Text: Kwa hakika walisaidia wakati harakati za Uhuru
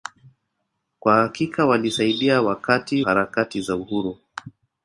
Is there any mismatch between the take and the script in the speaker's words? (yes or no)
no